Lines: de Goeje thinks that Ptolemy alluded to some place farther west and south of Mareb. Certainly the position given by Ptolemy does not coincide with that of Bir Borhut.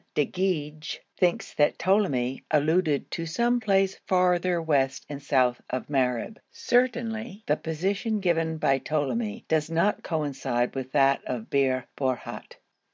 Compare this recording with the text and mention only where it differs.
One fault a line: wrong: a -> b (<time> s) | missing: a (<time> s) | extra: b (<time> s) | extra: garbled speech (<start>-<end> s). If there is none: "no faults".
no faults